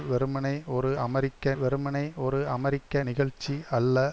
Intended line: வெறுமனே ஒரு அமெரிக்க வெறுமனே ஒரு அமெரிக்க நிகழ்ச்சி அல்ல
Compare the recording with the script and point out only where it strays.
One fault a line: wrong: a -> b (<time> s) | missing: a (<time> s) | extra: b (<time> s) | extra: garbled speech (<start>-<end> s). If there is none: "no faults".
no faults